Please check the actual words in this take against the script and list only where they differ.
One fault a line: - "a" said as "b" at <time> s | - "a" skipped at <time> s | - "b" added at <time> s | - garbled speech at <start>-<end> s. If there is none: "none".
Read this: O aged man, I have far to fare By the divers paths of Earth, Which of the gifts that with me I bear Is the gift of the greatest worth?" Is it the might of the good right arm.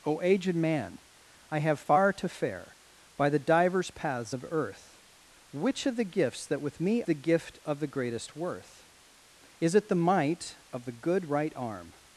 - "I bear Is" skipped at 7.0 s